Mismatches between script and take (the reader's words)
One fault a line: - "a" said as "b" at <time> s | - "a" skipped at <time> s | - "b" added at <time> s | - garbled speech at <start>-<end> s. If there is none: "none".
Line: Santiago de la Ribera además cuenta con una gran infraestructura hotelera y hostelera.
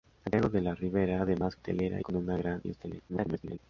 - "cuenta" said as "hotelera" at 1.5 s
- "infraestructura hotelera" skipped at 2.6 s
- garbled speech at 3.1-3.6 s